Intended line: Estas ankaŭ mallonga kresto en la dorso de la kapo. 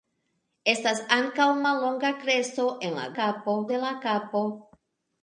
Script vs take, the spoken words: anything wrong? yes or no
yes